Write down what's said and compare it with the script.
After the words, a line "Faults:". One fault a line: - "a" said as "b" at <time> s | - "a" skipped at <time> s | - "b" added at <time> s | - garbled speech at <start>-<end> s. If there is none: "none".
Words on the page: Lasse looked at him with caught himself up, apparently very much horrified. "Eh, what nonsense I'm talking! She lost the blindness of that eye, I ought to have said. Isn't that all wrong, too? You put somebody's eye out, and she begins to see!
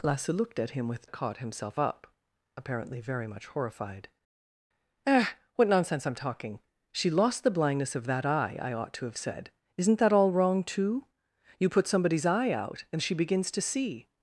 Lasse looked at him with caught himself up, apparently very much horrified. "Eh, what nonsense I'm talking! She lost the blindness of that eye, I ought to have said. Isn't that all wrong, too? You put somebody's eye out, and she begins to see!
Faults:
none